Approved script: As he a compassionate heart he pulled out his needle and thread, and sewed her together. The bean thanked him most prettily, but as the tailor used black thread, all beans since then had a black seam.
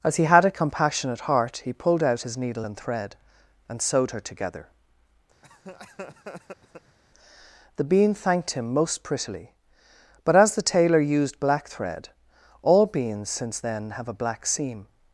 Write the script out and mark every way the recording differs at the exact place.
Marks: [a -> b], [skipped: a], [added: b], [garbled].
As he [added: had] a compassionate heart he pulled out his needle and thread, and sewed her together. The bean thanked him most prettily, but as the tailor used black thread, all beans since then [had -> have] a black seam.